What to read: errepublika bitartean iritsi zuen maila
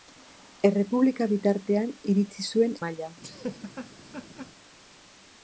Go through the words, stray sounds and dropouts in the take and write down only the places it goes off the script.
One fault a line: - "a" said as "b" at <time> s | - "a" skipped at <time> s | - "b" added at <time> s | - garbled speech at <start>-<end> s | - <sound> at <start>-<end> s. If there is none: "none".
- laugh at 3.2-4.5 s